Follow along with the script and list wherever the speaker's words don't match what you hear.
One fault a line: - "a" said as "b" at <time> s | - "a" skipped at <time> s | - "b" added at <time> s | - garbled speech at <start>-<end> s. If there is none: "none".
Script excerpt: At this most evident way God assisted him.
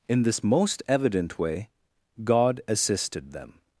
- "At" said as "In" at 0.1 s
- "him" said as "them" at 3.3 s